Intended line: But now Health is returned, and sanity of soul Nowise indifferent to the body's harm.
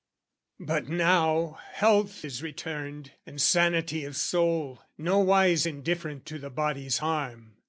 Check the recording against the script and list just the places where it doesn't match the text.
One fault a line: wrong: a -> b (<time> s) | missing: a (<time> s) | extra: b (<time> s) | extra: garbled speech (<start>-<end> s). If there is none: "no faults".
no faults